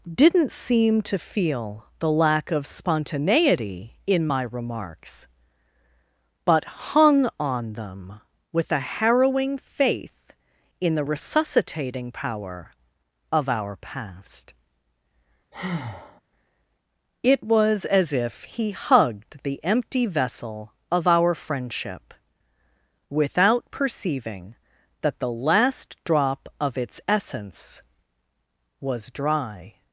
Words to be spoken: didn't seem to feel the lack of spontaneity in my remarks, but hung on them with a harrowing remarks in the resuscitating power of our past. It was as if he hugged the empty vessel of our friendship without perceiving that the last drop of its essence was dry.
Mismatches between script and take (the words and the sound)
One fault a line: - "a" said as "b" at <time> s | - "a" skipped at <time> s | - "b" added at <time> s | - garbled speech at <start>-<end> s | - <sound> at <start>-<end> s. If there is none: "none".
- "remarks" said as "faith" at 9.6 s
- breath at 15.5-16.2 s